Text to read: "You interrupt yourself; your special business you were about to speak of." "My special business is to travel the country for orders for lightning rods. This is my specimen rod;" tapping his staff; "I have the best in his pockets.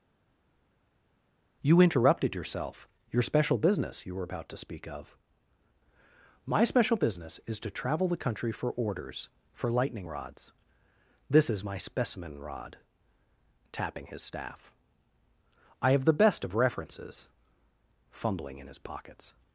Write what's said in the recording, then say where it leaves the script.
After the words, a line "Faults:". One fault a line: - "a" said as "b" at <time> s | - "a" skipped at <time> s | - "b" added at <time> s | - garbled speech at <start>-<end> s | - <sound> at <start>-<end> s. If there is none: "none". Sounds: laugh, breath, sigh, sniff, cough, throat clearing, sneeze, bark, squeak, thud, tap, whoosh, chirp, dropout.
"You interrupted yourself; your special business you were about to speak of." "My special business is to travel the country for orders for lightning rods. This is my specimen rod;" tapping his staff; "I have the best of references", fumbling in his pockets.
Faults:
- "interrupt" said as "interrupted" at 1.8 s
- "of references fumbling" added at 16.4 s